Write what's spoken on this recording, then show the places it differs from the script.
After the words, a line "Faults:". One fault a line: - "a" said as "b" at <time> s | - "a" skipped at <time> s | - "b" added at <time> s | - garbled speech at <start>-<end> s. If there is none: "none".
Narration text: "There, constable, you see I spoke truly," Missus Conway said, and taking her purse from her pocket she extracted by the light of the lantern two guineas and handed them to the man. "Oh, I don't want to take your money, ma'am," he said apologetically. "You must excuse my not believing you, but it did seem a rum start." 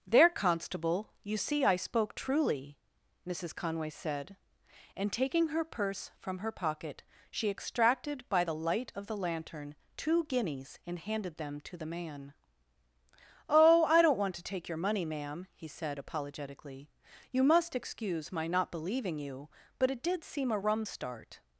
"There, constable, you see I spoke truly," Missus Conway said, and taking her purse from her pocket she extracted by the light of the lantern two guineas and handed them to the man. "Oh, I don't want to take your money, ma'am," he said apologetically. "You must excuse my not believing you, but it did seem a rum start."
Faults:
none